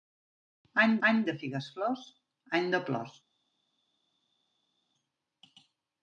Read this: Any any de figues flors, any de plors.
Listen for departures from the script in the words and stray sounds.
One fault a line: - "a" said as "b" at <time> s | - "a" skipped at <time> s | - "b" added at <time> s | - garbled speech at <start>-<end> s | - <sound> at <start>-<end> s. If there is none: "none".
none